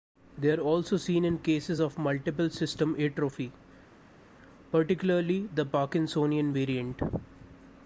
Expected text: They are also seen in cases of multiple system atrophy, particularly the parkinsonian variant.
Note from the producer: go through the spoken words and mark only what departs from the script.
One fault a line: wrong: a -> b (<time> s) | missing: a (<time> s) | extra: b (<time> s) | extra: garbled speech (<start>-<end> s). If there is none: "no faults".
no faults